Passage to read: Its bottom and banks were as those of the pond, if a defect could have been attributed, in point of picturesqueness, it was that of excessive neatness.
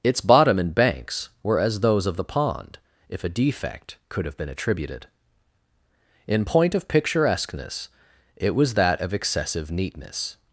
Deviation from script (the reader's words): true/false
false